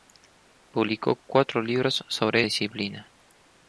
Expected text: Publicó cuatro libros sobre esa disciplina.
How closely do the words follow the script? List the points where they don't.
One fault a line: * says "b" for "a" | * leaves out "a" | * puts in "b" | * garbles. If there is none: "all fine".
* leaves out "esa"